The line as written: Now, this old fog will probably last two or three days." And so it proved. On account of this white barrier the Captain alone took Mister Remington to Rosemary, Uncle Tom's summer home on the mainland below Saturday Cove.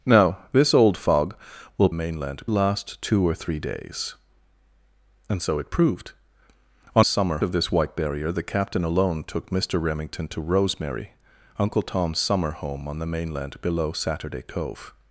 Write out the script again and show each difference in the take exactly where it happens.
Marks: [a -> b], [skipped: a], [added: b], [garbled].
Now, this old fog will [probably -> mainland] last two or three days." And so it proved. On [account -> summer] of this white barrier the Captain alone took Mister Remington to Rosemary, Uncle Tom's summer home on the mainland below Saturday Cove.